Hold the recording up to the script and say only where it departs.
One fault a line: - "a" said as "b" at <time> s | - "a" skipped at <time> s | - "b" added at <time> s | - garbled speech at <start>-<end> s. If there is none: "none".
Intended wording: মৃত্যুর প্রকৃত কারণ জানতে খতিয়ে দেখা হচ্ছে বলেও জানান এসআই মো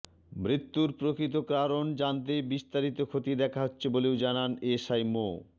- "বিস্তারিত" added at 2.5 s